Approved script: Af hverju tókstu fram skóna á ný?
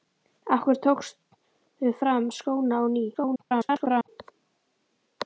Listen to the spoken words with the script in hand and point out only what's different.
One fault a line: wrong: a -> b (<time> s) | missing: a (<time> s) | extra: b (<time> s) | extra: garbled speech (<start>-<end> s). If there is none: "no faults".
extra: garbled speech (3.1-4.1 s)